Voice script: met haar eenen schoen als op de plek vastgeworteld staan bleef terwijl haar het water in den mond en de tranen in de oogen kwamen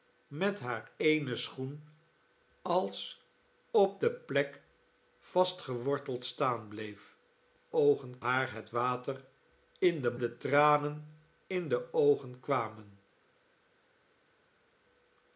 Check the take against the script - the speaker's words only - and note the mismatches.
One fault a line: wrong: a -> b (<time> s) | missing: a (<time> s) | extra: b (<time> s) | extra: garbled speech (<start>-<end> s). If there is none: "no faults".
wrong: terwijl -> oogen (7.7 s)
missing: mond en (10.2 s)